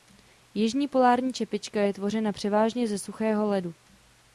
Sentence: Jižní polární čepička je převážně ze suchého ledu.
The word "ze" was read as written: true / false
true